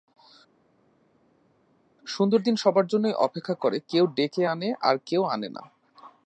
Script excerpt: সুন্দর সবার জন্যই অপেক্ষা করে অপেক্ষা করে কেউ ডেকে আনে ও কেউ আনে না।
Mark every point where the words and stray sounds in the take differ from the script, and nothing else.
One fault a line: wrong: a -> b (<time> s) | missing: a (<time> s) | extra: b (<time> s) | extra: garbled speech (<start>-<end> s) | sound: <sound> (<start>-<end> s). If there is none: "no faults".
extra: দিন (2.4 s)
missing: অপেক্ষা করে (3.8 s)
wrong: ও -> আর (4.8 s)